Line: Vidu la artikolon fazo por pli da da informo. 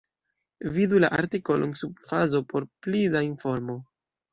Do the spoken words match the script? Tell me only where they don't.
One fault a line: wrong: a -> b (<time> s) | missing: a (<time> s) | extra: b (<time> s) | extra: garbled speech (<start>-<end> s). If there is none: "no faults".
extra: sub (1.8 s)
missing: da (3.3 s)